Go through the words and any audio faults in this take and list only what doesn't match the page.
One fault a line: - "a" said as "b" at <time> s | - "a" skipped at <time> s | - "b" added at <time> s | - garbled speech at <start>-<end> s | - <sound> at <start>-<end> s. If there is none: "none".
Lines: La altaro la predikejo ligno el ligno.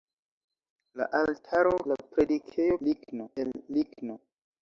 none